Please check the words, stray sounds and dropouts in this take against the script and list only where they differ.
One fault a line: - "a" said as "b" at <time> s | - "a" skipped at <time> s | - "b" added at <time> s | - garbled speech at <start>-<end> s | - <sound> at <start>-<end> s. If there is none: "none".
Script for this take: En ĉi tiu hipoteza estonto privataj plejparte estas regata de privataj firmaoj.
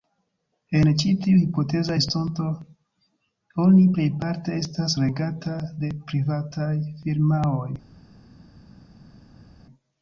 - "privataj" said as "oni" at 3.6 s